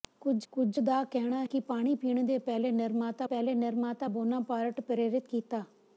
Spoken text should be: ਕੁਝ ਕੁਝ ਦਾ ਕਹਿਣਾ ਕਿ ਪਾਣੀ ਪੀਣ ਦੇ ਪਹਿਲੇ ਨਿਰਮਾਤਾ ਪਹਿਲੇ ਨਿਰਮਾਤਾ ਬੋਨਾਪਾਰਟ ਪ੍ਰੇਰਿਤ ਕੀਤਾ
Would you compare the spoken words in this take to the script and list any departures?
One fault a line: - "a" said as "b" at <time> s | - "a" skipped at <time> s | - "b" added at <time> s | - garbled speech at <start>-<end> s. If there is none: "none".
none